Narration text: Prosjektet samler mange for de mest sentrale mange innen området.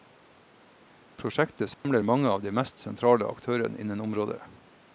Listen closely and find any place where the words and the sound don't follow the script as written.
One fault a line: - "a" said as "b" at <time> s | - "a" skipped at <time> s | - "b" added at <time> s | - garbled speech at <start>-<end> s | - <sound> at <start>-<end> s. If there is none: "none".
- dropout at 1.7-1.8 s
- "for" said as "av" at 2.3 s
- "mange" said as "aktørene" at 3.3 s